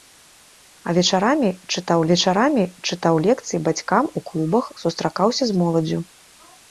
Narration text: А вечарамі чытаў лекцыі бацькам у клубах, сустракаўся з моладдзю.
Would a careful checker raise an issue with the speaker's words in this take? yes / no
yes